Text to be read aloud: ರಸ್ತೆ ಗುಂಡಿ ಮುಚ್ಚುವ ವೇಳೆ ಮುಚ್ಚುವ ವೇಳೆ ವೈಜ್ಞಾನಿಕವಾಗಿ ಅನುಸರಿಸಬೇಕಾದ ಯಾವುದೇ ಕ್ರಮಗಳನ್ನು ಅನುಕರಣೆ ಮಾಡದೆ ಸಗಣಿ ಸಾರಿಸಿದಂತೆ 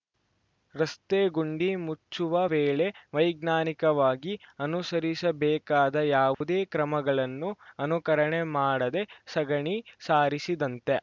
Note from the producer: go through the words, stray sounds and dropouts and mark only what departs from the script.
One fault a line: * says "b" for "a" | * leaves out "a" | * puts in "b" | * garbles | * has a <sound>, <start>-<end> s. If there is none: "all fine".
* leaves out "ಮುಚ್ಚುವ ವೇಳೆ"
* has a dropout, 6.3-6.4 s